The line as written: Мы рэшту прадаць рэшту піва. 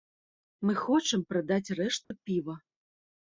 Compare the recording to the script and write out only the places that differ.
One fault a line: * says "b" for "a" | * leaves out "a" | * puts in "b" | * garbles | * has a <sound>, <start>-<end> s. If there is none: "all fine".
* says "хочам" for "рэшту"
* has a dropout, 2.0-2.1 s